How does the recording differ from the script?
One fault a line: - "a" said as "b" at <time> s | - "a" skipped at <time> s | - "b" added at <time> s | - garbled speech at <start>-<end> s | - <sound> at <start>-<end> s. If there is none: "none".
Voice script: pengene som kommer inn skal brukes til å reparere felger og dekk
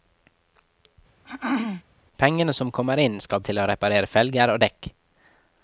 - throat clearing at 1.2-1.8 s
- "brukes" skipped at 3.4 s